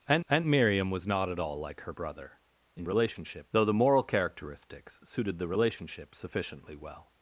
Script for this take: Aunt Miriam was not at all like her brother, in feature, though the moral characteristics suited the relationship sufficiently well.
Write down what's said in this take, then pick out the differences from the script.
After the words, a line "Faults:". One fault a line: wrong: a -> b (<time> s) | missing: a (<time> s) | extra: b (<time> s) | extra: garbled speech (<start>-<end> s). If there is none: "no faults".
Aunt aunt Miriam was not at all like her brother, in relationship, though the moral characteristics suited the relationship sufficiently well.
Faults:
extra: aunt (0.3 s)
wrong: feature -> relationship (2.8 s)